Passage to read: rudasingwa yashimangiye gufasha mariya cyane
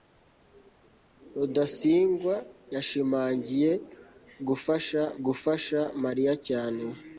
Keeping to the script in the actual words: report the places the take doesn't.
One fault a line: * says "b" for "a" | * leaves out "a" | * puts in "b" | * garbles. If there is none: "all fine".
* puts in "gufasha"